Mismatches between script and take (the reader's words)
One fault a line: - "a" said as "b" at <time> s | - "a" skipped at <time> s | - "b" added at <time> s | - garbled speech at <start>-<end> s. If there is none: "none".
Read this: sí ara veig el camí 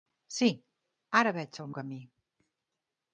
none